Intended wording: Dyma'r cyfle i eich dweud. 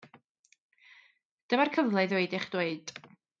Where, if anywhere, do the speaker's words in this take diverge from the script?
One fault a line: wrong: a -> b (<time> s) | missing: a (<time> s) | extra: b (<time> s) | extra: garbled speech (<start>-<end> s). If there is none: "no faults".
extra: ddweud (2.1 s)